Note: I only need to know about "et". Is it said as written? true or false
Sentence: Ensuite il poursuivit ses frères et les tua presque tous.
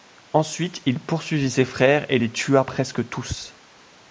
true